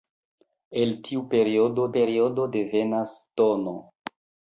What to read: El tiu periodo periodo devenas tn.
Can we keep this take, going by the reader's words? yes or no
yes